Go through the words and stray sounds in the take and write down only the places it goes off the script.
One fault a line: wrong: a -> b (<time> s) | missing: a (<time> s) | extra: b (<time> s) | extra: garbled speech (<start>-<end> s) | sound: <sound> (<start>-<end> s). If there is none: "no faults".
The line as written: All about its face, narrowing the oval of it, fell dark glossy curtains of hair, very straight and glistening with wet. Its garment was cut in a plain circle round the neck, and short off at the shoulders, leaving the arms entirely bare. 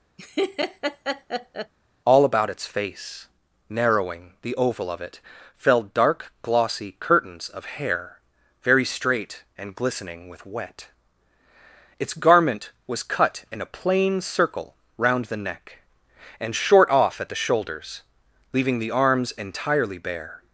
sound: laugh (0.2-1.7 s)